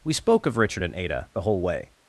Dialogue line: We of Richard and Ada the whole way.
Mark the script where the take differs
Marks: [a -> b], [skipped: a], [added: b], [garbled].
We [added: spoke] of Richard and Ada the whole way.